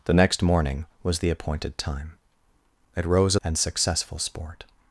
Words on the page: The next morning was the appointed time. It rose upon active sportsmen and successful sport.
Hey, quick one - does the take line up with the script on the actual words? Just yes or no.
no